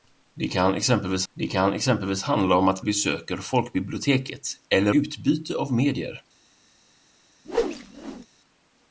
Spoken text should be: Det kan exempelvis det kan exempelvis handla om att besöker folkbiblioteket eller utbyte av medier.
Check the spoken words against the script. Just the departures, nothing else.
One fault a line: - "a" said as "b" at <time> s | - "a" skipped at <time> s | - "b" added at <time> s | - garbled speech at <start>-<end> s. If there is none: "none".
none